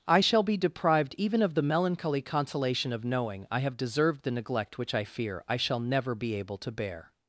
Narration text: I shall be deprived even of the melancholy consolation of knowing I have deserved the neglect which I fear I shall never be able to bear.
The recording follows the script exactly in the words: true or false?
true